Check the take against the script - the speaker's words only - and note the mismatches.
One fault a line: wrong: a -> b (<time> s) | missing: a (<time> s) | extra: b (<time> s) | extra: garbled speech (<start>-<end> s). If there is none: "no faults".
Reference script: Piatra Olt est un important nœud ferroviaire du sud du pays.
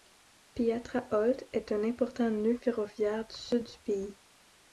no faults